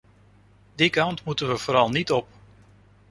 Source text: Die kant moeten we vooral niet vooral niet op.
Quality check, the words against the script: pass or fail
fail